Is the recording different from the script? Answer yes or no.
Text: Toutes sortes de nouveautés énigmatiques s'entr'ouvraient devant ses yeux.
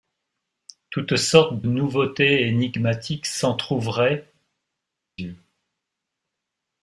yes